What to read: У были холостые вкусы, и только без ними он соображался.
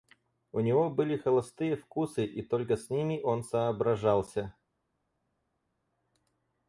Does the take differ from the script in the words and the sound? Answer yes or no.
yes